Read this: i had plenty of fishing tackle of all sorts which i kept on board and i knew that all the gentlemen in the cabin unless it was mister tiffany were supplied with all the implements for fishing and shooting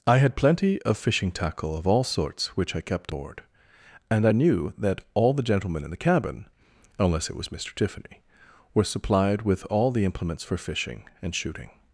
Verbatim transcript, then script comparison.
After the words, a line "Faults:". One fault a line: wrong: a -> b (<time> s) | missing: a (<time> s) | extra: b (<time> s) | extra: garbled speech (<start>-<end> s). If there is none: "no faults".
i had plenty of fishing tackle of all sorts which i kept board and i knew that all the gentlemen in the cabin unless it was mister tiffany were supplied with all the implements for fishing and shooting
Faults:
missing: on (3.1 s)